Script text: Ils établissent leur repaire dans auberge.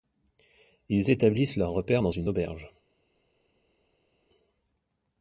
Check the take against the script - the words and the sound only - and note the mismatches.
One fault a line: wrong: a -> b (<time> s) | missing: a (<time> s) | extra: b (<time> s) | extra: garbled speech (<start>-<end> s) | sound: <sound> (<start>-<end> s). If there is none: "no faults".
extra: une (2.1 s)